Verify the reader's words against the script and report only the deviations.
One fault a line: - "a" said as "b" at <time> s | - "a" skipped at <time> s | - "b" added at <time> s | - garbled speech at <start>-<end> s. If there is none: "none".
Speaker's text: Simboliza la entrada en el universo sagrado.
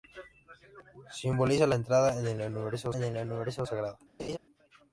- "en el universo" added at 3.0 s